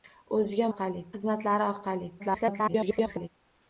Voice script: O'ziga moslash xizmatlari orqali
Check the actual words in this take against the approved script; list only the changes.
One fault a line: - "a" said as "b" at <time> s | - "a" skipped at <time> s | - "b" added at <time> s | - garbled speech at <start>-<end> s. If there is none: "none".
- "moslash" said as "orqali" at 0.7 s
- garbled speech at 2.2-3.3 s